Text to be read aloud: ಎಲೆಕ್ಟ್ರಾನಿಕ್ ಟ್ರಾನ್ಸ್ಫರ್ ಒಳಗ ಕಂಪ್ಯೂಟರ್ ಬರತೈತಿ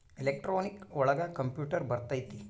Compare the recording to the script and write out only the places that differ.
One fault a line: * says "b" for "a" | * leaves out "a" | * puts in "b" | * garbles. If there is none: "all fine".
* leaves out "ಟ್ರಾನ್ಸ್ಫರ್"